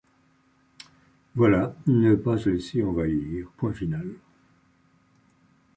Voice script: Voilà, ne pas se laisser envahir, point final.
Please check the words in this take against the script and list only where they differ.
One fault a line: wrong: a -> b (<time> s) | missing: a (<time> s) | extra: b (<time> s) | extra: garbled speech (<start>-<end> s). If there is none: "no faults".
no faults